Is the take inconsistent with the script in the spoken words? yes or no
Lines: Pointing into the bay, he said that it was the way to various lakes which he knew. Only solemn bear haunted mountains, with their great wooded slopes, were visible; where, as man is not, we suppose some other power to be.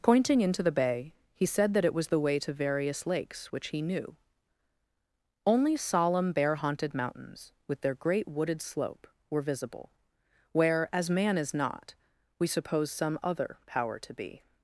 yes